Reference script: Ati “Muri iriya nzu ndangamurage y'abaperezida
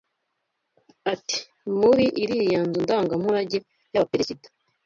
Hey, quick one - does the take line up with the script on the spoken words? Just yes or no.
yes